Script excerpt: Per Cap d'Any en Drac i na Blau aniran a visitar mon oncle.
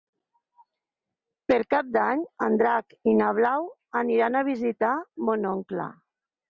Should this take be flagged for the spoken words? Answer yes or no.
no